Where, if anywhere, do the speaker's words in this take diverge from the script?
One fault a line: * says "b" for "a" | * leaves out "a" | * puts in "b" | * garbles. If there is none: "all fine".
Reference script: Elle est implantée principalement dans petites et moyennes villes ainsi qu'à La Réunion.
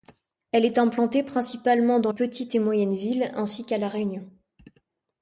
all fine